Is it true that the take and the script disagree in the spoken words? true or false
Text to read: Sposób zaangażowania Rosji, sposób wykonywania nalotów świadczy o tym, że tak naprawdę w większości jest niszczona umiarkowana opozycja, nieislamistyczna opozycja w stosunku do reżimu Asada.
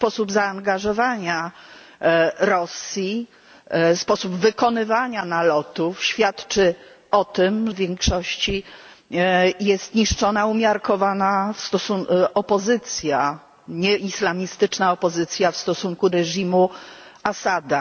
true